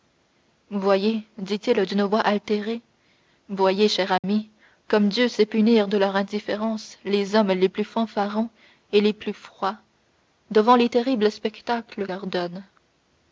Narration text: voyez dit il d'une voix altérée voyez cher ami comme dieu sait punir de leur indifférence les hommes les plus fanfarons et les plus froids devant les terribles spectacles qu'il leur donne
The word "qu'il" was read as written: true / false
false